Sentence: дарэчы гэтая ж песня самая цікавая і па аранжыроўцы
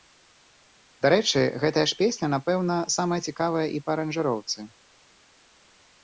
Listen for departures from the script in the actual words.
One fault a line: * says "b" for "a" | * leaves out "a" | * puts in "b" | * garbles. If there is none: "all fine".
* puts in "напэўна"